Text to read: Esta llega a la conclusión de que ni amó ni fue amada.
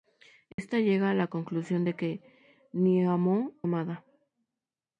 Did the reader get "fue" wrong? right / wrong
wrong